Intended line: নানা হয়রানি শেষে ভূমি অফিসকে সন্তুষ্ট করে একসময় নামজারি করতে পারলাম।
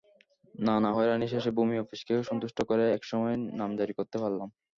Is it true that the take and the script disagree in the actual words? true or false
false